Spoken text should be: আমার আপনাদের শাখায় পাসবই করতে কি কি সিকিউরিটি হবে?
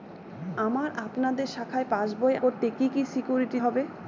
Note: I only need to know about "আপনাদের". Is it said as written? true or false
true